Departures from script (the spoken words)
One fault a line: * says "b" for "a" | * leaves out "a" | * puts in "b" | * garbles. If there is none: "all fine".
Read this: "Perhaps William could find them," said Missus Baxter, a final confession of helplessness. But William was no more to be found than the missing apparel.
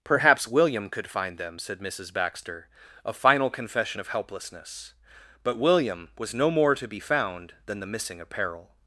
all fine